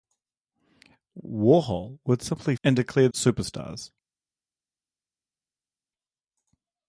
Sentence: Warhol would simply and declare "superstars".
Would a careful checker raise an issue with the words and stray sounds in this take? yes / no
no